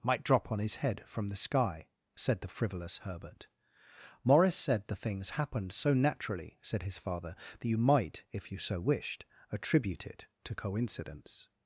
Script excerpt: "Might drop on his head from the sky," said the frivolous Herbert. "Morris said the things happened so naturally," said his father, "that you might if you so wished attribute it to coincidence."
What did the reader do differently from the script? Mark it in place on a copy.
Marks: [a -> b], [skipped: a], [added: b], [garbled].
"Might drop on his head from the sky," said the frivolous Herbert. "Morris said the things happened so naturally," said his father, "that you might if you so wished attribute it to coincidence."